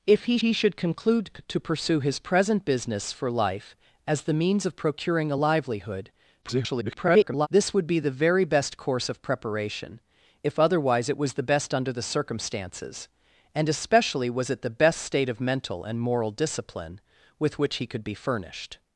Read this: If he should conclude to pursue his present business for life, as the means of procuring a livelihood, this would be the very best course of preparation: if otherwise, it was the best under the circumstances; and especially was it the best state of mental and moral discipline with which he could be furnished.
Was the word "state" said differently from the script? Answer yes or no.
no